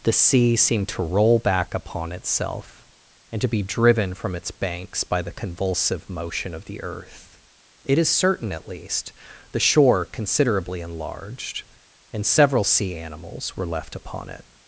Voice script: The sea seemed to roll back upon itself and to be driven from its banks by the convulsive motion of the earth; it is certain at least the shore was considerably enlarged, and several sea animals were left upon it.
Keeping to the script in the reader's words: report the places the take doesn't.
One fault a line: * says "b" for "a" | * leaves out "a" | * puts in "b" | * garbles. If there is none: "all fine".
* leaves out "was"